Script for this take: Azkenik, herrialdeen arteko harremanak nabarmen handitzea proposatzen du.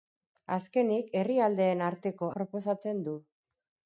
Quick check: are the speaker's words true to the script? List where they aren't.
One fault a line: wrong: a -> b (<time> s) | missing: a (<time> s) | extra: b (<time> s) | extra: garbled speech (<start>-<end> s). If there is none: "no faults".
missing: harremanak nabarmen handitzea (2.3 s)